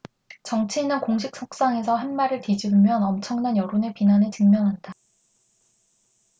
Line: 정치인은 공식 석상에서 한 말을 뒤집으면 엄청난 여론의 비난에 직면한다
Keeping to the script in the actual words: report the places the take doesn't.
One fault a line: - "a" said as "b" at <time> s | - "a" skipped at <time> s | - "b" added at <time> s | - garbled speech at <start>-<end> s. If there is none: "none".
none